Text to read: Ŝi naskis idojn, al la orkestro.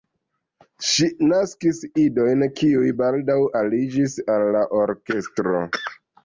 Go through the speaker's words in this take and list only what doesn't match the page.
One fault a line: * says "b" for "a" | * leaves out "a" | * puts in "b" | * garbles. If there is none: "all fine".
* puts in "kiuj baldaŭ aliĝis"